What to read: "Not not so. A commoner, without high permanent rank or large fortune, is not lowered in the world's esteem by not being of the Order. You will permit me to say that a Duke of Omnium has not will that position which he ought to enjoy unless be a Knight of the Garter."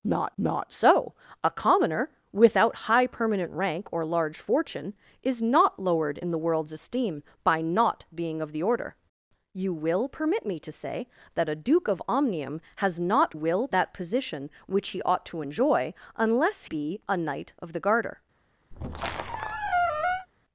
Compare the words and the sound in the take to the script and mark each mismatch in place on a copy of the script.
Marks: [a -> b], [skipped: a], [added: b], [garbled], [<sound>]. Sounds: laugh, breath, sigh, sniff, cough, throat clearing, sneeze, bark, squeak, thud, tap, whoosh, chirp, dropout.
"Not not so. A commoner, without high permanent rank or large fortune, is not lowered in the world's esteem by not being of the Order. You will permit me to say that a Duke of Omnium has not will that position which he ought to enjoy unless be a Knight of the Garter." [squeak]